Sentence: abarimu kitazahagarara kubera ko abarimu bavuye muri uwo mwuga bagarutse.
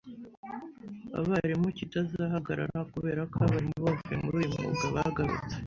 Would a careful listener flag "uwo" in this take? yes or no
yes